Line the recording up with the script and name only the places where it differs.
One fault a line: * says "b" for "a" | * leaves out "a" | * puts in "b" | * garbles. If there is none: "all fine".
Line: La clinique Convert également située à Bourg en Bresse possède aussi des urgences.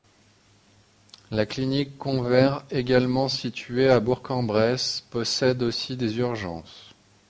all fine